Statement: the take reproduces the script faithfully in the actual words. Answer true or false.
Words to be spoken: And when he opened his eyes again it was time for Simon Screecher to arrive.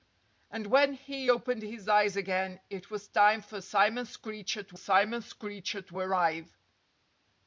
false